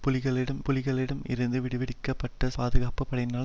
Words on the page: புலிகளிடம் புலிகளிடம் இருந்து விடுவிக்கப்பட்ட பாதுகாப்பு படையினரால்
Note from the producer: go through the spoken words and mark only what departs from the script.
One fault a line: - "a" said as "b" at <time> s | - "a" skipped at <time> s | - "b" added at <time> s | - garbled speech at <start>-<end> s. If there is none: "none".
none